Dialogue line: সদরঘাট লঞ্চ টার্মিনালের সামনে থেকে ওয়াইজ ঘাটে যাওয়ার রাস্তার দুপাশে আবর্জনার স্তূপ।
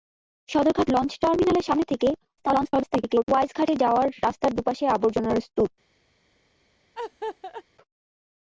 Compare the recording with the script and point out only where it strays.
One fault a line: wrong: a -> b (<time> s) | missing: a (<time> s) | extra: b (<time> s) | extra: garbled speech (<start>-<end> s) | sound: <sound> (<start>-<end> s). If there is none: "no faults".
extra: garbled speech (2.4-3.2 s)
sound: laugh (6.9-7.6 s)